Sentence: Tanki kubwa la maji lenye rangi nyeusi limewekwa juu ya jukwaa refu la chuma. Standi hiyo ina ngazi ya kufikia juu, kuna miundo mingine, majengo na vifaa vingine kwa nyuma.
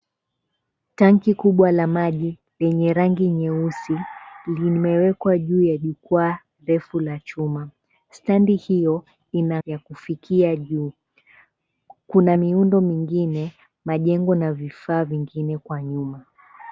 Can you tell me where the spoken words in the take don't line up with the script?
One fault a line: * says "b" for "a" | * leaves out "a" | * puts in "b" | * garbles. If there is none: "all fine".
* leaves out "ngazi"